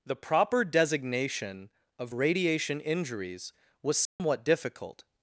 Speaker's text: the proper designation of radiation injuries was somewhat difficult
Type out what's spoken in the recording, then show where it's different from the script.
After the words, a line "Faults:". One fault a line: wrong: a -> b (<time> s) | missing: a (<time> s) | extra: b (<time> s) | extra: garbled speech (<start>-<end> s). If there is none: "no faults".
the proper designation of radiation injuries was somewhat difficult
Faults:
no faults